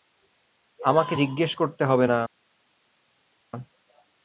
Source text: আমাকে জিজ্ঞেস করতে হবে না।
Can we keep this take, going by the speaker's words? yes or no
yes